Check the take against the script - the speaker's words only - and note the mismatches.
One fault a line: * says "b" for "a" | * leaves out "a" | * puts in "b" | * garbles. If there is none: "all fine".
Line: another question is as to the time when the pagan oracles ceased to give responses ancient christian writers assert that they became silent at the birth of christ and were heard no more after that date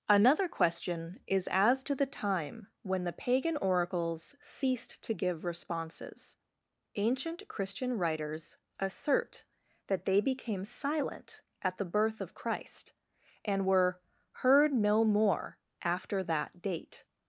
all fine